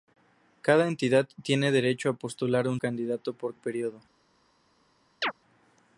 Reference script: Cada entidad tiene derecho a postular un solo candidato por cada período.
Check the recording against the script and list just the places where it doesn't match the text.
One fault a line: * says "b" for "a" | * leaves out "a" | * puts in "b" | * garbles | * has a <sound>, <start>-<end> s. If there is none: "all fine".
* leaves out "solo"
* leaves out "cada"
* has a chirp, 5.2-5.3 s